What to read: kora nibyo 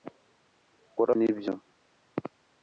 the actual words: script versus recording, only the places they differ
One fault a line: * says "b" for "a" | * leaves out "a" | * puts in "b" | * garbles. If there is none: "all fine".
all fine